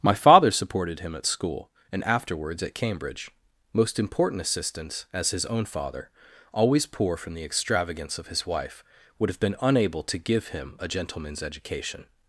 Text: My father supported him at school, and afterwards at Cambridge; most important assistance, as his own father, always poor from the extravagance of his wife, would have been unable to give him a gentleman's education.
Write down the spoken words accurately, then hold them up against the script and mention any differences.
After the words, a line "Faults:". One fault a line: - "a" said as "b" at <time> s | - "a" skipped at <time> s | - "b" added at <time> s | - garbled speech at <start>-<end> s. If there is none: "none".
My father supported him at school, and afterwards at Cambridge; most important assistance, as his own father, always poor from the extravagance of his wife, would have been unable to give him a gentleman's education.
Faults:
none